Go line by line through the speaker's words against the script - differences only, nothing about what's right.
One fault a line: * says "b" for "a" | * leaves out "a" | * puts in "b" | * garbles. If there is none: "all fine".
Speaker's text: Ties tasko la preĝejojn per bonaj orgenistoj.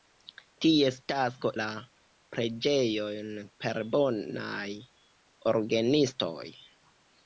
all fine